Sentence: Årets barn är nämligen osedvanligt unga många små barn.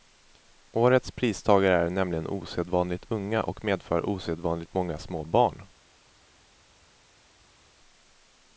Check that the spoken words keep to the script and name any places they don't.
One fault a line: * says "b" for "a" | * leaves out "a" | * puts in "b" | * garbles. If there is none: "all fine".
* says "pristagare" for "barn"
* puts in "och medför osedvanligt"